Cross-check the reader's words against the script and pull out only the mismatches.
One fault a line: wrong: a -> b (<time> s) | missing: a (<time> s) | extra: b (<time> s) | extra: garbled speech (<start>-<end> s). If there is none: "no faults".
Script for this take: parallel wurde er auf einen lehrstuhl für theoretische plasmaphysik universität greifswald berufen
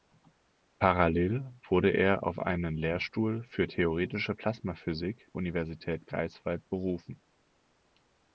no faults